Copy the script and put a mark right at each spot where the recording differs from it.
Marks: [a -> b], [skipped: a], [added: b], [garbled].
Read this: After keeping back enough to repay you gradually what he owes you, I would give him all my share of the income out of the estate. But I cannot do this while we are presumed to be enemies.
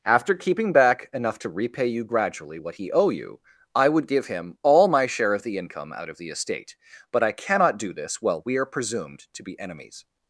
After keeping back enough to repay you gradually what he [owes -> owe] you, I would give him all my share of the income out of the estate. But I cannot do this while we are presumed to be enemies.